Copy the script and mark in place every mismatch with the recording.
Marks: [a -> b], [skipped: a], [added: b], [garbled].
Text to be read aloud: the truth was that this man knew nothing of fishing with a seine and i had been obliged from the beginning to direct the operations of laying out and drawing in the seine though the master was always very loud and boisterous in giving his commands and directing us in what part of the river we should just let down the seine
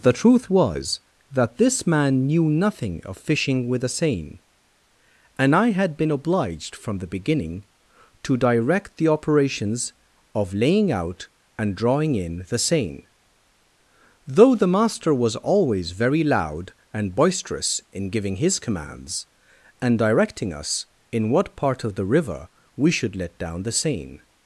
the truth was that this man knew nothing of fishing with a seine and i had been obliged from the beginning to direct the operations of laying out and drawing in the seine though the master was always very loud and boisterous in giving his commands and directing us in what part of the river we should [skipped: just] let down the seine